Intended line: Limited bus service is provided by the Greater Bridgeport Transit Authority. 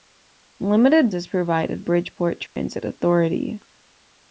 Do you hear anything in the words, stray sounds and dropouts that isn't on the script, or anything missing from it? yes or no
yes